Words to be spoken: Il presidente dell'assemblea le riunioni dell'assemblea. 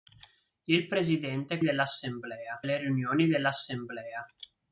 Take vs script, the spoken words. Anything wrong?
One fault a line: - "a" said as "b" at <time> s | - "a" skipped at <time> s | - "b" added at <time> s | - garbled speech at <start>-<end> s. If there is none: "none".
none